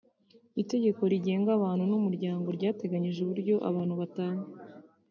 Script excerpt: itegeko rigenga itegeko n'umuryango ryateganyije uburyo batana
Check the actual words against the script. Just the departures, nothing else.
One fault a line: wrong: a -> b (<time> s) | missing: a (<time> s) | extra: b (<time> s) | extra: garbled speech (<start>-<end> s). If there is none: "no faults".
wrong: itegeko -> abantu (1.6 s)
extra: abantu (3.7 s)